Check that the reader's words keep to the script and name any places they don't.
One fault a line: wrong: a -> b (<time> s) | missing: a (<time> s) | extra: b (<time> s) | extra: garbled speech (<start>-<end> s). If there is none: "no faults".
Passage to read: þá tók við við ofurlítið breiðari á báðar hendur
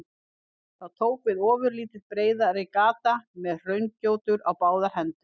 missing: við (1.4 s)
extra: gata með hraungjótur (2.8 s)